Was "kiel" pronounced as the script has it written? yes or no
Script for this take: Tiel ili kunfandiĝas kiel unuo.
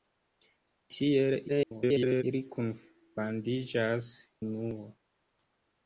no